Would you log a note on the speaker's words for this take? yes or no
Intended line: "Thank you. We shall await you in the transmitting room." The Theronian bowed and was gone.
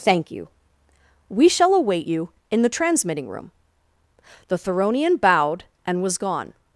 no